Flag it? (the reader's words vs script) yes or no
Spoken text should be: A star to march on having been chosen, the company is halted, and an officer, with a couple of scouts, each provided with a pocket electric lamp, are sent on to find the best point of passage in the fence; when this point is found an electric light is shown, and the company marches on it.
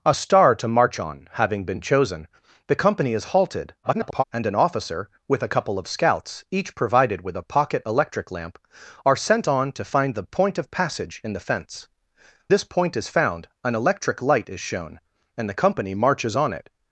yes